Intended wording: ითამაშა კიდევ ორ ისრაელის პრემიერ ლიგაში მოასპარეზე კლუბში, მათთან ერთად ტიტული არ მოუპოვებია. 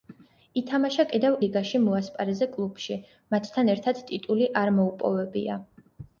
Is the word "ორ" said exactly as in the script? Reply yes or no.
no